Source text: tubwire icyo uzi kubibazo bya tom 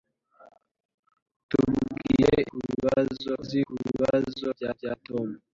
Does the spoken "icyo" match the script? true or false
false